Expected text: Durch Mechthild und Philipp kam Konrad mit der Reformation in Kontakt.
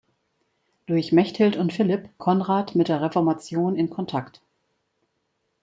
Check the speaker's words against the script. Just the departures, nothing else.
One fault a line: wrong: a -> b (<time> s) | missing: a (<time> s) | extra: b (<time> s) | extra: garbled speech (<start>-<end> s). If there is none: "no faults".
missing: kam (2.1 s)